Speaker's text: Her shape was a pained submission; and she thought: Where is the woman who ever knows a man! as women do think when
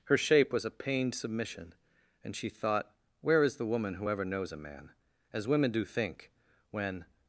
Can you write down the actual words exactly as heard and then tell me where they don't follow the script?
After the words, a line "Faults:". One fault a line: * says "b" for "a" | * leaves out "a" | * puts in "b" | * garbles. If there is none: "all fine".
Her shape was a pained submission; and she thought: Where is the woman who ever knows a man! as women do think when
Faults:
all fine